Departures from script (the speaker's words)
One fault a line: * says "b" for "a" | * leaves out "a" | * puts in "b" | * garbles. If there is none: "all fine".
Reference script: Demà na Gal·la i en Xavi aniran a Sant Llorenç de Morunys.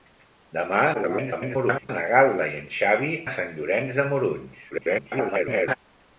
* garbles
* leaves out "aniran"
* garbles